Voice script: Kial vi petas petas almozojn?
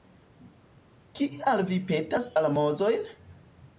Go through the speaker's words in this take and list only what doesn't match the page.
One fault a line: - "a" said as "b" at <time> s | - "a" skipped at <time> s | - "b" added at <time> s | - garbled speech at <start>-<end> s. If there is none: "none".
- "petas" skipped at 2.3 s